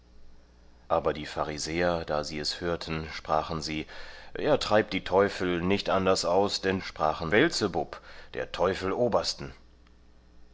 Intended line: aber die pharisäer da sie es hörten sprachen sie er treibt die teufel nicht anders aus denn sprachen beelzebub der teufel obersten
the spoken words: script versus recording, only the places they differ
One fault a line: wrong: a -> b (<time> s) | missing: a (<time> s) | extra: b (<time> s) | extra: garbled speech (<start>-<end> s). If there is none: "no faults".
no faults